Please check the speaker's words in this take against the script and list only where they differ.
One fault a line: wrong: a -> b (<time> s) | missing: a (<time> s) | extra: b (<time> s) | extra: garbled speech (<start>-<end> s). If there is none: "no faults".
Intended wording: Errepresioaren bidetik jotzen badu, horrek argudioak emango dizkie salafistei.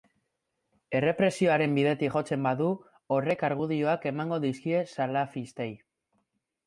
no faults